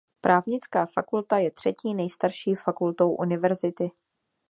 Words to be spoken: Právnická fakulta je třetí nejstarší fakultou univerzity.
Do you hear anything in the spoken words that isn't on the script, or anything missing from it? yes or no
no